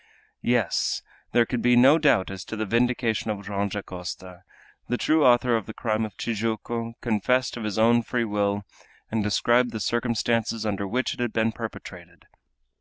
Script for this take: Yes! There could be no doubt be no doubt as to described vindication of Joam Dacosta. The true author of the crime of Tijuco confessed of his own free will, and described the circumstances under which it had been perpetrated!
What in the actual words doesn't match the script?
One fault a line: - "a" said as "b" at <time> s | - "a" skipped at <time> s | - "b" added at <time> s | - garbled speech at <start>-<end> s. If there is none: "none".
- "be no doubt" skipped at 2.3 s
- "described" said as "the" at 2.5 s